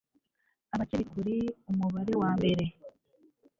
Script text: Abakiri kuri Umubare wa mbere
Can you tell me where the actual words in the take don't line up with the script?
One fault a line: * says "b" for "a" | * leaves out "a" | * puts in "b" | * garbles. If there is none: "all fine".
all fine